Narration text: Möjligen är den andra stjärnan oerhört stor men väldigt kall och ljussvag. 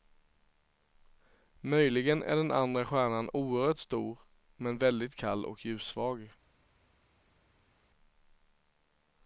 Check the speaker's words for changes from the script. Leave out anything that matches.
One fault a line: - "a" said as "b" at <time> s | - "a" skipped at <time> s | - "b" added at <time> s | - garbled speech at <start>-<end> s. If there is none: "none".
none